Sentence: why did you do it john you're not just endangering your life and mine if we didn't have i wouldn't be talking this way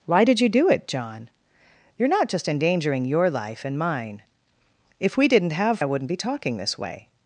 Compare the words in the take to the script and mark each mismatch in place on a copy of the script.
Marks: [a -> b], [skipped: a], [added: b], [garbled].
why did you do it john you're not just endangering your life and mine if we didn't have i wouldn't be talking this way